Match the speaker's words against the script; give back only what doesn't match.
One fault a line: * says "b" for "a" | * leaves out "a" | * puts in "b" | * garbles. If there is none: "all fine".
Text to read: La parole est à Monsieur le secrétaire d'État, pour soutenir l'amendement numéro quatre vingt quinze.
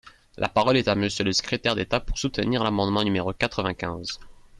all fine